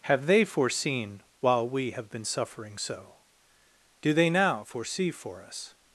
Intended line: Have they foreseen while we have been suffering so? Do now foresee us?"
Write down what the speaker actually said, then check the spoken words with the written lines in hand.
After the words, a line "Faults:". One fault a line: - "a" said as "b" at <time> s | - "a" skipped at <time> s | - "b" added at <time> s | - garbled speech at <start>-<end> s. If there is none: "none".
Have they foreseen while we have been suffering so? Do they now foresee for us?"
Faults:
- "they" added at 4.1 s
- "for" added at 5.1 s